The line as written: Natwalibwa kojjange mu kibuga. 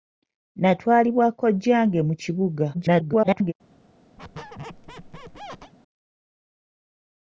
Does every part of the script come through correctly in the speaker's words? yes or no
no